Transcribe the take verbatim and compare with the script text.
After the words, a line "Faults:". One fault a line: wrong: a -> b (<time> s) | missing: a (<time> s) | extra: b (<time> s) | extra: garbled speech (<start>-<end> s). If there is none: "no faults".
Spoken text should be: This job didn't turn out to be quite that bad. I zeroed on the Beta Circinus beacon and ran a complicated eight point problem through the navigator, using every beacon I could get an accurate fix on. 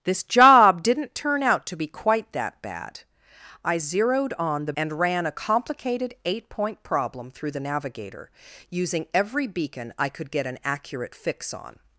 This job didn't turn out to be quite that bad. I zeroed on the And ran a complicated eight point problem through the navigator, using every beacon I could get an accurate fix on.
Faults:
missing: Beta Circinus beacon (4.7 s)